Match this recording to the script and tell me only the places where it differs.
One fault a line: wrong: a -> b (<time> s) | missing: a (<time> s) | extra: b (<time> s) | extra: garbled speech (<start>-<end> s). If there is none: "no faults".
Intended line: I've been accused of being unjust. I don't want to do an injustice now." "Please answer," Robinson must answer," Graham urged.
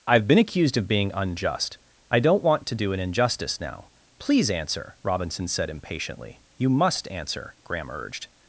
extra: said impatiently You (5.5 s)